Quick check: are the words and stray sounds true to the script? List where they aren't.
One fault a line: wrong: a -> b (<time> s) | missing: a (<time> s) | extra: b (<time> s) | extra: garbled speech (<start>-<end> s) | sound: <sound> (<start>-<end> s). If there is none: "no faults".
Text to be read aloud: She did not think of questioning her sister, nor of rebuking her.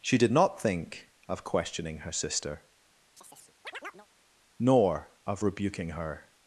sound: chirp (3.2-4.1 s)